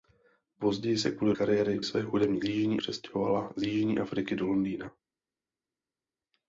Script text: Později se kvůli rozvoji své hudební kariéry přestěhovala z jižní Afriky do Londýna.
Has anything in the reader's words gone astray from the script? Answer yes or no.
yes